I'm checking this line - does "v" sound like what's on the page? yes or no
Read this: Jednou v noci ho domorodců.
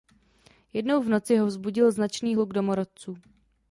yes